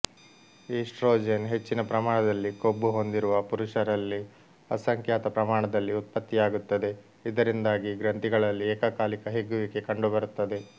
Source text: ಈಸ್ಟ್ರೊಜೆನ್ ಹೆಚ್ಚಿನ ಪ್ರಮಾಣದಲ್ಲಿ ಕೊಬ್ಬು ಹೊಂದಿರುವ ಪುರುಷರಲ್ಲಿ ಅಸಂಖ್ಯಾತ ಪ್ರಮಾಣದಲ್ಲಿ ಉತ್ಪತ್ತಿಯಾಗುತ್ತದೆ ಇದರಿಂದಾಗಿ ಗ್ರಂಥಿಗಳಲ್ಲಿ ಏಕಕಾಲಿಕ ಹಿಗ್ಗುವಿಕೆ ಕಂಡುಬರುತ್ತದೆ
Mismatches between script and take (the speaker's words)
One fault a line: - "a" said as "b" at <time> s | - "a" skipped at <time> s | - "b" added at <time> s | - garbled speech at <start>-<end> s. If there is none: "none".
none